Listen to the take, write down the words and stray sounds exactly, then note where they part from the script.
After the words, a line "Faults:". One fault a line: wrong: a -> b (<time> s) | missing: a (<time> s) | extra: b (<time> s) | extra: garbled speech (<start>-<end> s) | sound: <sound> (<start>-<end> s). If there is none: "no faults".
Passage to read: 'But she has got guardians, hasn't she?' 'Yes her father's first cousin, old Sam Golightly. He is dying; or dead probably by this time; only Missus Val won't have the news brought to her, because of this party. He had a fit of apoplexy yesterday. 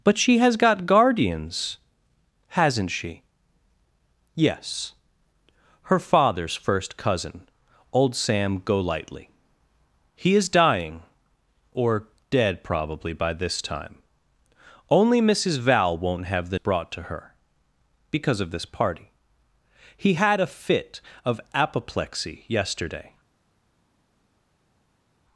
'But she has got guardians, hasn't she?' 'Yes her father's first cousin, old Sam Golightly. He is dying; or dead probably by this time; only Missus Val won't have the brought to her, because of this party. He had a fit of apoplexy yesterday.
Faults:
missing: news (16.6 s)